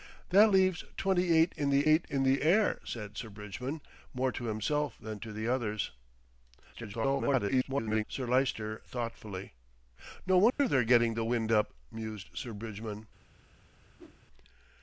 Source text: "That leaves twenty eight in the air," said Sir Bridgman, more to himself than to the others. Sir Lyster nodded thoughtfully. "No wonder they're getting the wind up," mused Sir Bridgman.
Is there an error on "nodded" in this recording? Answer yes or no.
yes